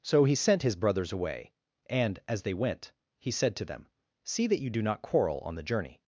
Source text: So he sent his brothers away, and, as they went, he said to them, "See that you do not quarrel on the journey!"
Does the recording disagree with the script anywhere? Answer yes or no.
no